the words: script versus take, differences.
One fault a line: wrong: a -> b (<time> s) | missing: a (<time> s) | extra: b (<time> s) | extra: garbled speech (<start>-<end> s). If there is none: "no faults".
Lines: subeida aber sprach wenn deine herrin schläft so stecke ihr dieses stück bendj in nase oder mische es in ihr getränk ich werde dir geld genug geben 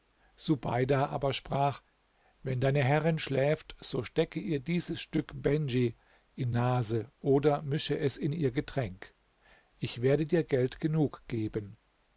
no faults